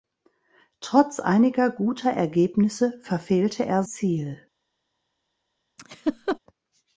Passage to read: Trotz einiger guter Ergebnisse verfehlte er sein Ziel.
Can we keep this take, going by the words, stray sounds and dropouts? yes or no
no